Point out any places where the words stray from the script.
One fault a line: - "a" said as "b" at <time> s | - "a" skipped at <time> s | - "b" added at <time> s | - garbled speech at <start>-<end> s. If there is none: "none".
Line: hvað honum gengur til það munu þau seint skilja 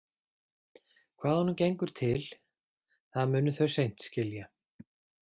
none